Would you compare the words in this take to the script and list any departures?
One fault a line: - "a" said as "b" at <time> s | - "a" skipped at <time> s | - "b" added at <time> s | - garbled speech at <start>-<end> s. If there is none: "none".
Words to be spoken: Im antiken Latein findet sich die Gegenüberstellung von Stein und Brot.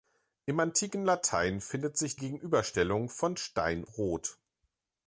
- "die" skipped at 2.2 s
- "und" skipped at 3.8 s